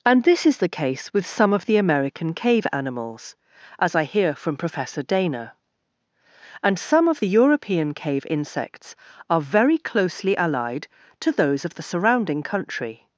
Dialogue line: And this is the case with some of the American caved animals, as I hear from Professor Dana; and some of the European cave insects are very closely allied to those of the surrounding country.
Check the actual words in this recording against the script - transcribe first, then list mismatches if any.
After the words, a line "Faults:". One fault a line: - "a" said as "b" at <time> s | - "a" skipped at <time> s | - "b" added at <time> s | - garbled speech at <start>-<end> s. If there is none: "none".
And this is the case with some of the American cave animals, as I hear from Professor Dana; and some of the European cave insects are very closely allied to those of the surrounding country.
Faults:
- "caved" said as "cave" at 2.3 s